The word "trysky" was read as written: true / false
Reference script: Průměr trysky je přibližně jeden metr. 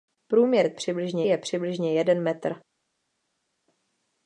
false